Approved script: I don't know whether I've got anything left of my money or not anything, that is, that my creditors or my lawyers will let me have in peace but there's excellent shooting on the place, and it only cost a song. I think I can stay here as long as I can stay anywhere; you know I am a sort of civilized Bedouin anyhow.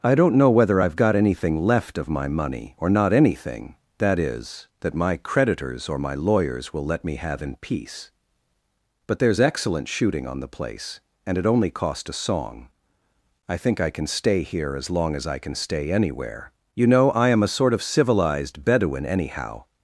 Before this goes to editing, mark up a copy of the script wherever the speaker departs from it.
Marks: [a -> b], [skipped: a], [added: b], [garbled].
I don't know whether I've got anything left of my money or not anything, that is, that my creditors or my lawyers will let me have in peace but there's excellent shooting on the place, and it only cost a song. I think I can stay here as long as I can stay anywhere; you know I am a sort of civilized Bedouin anyhow.